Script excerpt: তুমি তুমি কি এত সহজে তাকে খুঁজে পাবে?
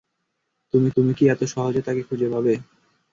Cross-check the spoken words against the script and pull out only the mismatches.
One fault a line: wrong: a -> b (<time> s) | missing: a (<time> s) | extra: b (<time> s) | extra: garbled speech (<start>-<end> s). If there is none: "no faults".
no faults